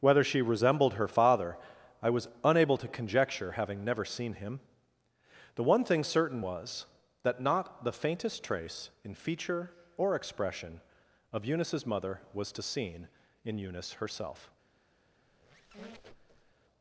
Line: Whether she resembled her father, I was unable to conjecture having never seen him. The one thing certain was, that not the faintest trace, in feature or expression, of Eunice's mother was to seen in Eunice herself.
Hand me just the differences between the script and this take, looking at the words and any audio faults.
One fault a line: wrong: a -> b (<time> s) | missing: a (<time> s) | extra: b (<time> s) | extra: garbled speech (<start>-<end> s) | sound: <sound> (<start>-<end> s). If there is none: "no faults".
sound: squeak (15.3-16.6 s)